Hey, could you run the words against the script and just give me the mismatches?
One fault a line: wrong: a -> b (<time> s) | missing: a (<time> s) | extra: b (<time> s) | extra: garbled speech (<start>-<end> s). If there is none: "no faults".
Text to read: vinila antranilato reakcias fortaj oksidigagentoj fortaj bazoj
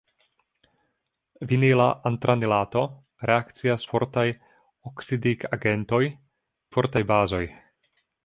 no faults